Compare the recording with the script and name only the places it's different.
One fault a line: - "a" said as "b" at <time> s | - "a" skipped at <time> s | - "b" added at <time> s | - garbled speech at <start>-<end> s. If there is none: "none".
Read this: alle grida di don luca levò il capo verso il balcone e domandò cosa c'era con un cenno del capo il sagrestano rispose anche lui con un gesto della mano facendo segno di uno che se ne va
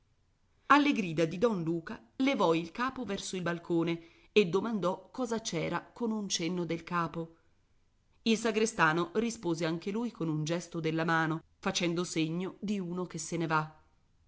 none